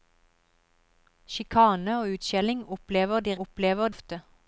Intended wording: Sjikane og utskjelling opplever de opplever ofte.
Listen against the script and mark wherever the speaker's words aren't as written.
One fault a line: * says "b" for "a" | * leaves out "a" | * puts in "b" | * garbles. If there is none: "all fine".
all fine